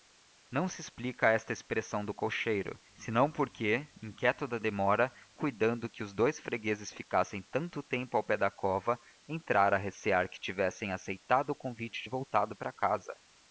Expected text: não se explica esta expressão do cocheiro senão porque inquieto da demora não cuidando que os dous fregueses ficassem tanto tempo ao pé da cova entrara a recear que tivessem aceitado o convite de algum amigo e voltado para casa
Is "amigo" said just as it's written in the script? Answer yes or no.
no